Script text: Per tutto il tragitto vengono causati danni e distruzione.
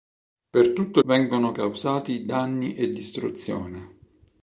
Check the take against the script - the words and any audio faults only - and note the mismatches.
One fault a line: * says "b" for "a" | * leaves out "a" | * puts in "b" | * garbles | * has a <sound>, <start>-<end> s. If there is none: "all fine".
* leaves out "il tragitto"